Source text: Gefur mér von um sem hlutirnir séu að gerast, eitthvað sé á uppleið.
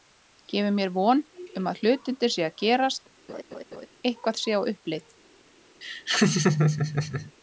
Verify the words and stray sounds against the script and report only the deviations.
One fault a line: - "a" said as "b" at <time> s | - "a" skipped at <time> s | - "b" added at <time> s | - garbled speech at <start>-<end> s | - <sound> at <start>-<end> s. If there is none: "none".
- "sem" said as "að" at 1.7 s
- laugh at 3.3-3.9 s
- laugh at 5.8-7.3 s